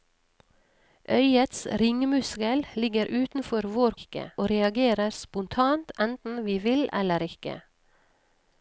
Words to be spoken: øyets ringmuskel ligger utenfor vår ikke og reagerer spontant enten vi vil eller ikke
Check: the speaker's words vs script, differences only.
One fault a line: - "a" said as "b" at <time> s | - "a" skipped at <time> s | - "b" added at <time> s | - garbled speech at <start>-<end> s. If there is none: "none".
none